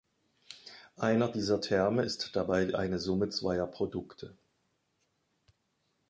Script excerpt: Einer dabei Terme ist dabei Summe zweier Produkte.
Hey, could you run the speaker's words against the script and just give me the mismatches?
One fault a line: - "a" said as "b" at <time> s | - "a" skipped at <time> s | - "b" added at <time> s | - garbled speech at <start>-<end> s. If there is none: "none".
- "dabei" said as "dieser" at 1.3 s
- "eine" added at 2.8 s